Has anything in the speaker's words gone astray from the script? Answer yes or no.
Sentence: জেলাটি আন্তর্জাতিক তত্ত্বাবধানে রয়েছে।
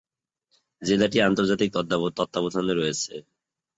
no